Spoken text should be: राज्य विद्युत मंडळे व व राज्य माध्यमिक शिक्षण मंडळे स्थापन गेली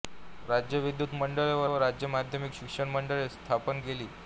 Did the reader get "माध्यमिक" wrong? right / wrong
right